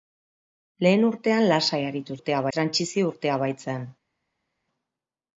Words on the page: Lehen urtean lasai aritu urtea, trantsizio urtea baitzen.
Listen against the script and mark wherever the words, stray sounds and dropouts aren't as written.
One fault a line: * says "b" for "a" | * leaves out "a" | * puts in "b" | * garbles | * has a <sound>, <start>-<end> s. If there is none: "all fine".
all fine